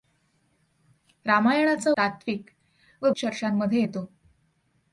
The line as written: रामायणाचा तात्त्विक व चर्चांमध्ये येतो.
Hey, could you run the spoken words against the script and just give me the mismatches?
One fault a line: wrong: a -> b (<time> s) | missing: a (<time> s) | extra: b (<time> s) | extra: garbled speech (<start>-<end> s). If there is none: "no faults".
no faults